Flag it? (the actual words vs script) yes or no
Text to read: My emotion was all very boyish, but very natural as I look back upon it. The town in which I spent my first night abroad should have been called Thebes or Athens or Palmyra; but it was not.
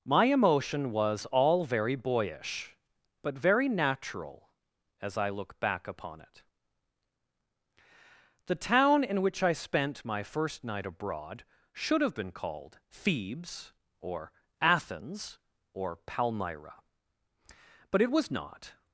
no